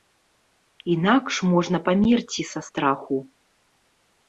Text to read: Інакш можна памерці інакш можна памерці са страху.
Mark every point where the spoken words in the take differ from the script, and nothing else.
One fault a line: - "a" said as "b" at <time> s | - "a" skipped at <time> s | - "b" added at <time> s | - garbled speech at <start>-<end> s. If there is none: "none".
- "інакш можна памерці" skipped at 2.4 s